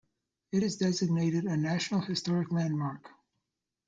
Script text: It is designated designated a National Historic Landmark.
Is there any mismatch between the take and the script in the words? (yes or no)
yes